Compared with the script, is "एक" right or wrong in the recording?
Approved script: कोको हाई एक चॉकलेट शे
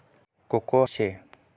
wrong